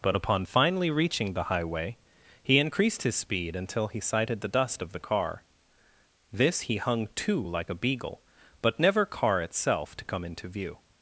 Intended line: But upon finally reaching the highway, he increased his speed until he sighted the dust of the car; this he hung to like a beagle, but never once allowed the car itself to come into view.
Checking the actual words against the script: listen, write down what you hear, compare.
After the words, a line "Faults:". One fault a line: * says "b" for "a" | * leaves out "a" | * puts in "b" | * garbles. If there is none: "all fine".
But upon finally reaching the highway, he increased his speed until he sighted the dust of the car; this he hung to like a beagle, but never car itself to come into view.
Faults:
* leaves out "once allowed the"